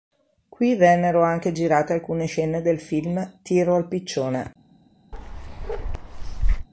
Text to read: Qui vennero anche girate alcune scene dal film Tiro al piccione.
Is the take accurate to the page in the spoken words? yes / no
no